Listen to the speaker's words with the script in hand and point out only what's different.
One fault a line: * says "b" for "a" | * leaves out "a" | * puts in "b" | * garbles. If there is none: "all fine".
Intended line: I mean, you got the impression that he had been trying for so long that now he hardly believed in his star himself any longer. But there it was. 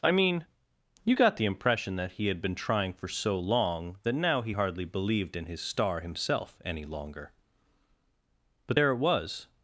all fine